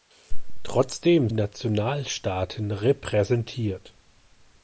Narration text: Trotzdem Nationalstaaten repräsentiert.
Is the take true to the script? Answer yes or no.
yes